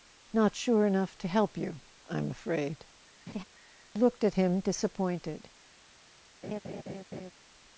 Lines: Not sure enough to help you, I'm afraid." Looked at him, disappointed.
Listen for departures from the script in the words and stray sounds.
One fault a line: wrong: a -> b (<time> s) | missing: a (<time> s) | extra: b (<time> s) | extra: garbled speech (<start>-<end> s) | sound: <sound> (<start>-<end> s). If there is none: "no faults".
sound: laugh (3.3-3.4 s)
sound: laugh (6.4-7.3 s)